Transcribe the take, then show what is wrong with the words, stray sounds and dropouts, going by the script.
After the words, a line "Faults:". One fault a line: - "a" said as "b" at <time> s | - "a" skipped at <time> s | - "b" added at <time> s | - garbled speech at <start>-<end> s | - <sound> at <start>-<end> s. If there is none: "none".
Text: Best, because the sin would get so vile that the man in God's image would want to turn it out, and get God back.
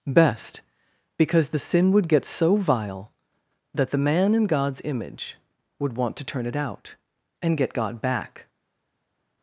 Best, because the sin would get so vile that the man in God's image would want to turn it out, and get God back.
Faults:
none